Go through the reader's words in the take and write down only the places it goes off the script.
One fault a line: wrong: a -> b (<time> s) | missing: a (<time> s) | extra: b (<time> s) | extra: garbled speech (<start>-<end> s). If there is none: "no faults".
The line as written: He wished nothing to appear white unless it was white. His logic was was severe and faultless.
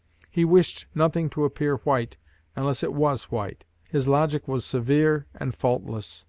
missing: was (4.6 s)